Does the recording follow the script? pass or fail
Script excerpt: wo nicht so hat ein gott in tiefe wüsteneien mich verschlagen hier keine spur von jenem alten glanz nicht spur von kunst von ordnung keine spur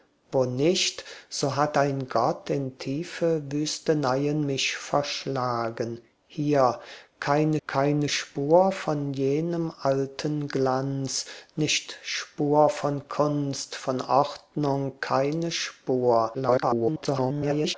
fail